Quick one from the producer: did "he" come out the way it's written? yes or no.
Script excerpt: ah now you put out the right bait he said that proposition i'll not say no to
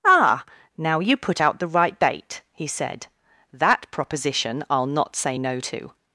yes